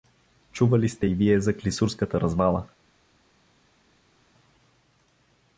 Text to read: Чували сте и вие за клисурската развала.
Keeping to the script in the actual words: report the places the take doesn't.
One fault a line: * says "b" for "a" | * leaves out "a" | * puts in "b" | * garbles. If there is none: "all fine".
all fine